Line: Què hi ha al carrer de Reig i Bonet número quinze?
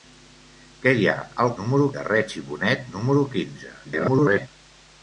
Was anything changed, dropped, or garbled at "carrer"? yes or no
yes